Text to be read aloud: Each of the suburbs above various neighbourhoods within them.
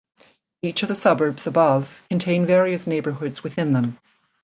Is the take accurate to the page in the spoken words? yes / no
no